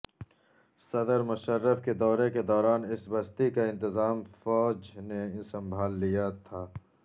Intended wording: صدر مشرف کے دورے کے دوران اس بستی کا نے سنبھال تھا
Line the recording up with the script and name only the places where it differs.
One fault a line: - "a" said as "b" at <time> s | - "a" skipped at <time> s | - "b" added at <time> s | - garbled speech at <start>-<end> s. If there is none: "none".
- "انتظام فوج" added at 3.7 s
- "لیا" added at 6.0 s